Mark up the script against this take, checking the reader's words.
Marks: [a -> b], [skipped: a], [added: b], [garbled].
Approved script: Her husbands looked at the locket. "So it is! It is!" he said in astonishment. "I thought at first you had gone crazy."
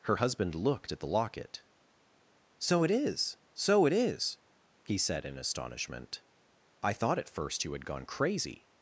Her [husbands -> husband] looked at the locket. "So it is! [added: So] It is!" he said in astonishment. "I thought at first you had gone crazy."